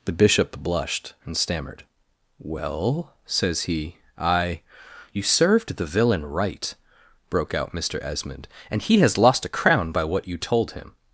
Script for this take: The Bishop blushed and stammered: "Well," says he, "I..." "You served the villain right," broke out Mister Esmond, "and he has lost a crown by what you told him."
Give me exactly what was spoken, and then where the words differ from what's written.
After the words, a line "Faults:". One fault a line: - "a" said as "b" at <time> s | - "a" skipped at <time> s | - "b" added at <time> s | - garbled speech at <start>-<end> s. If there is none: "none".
The Bishop blushed and stammered: "Well," says he, "I..." "You served the villain right," broke out Mister Esmond, "and he has lost a crown by what you told him."
Faults:
none